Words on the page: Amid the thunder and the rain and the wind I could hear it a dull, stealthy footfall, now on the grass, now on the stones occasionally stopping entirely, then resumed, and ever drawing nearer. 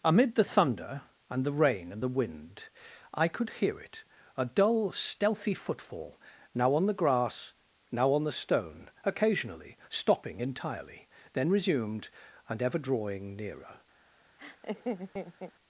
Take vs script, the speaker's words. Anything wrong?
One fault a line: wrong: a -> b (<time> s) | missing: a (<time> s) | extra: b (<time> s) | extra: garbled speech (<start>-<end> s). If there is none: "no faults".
wrong: stones -> stone (8.3 s)